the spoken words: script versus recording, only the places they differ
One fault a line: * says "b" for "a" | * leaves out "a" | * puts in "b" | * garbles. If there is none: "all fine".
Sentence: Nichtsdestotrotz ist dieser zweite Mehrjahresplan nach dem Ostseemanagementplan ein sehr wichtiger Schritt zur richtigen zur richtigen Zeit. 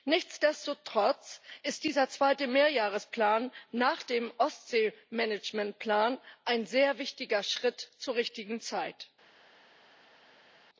* leaves out "zur richtigen"